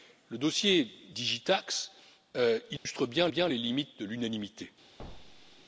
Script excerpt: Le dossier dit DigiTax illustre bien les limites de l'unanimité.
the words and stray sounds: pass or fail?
fail